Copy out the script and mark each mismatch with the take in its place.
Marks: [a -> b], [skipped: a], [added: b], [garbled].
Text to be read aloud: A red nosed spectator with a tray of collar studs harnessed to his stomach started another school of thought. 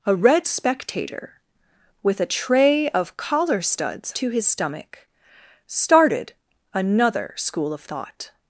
A red [skipped: nosed] spectator with a tray of collar studs [skipped: harnessed] to his stomach started another school of thought.